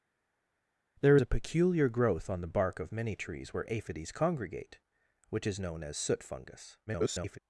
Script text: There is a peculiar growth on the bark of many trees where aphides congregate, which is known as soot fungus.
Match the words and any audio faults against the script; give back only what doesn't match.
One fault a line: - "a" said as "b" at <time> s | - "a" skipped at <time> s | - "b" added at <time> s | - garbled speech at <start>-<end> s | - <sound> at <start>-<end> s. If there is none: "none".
- "is" skipped at 1.2 s
- garbled speech at 6.9-7.4 s